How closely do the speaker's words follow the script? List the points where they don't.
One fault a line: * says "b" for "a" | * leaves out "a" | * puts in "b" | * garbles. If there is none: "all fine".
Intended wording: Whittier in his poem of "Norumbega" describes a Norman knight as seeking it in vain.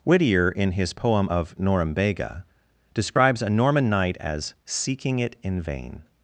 all fine